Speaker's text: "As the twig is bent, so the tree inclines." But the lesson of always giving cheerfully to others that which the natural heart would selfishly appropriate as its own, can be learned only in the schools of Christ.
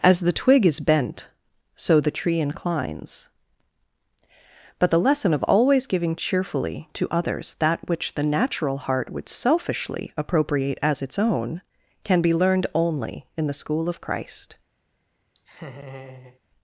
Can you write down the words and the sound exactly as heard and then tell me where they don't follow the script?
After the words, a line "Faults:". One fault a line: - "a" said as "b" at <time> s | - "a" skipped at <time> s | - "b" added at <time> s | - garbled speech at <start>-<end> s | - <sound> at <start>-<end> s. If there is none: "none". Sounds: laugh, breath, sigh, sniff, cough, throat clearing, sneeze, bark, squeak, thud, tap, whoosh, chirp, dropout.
"As the twig is bent, so the tree inclines." But the lesson of always giving cheerfully to others that which the natural heart would selfishly appropriate as its own, can be learned only in the school of Christ.
Faults:
- "schools" said as "school" at 13.5 s
- laugh at 15.3-16.4 s